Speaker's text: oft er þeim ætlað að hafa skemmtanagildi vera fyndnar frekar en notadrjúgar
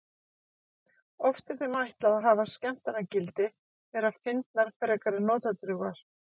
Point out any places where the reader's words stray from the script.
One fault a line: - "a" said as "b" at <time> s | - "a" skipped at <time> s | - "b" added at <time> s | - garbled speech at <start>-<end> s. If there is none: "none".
none